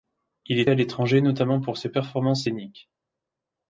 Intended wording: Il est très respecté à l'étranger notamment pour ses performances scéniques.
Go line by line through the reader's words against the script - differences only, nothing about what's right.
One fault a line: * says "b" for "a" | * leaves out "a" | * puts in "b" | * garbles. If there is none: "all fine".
* leaves out "très respecté"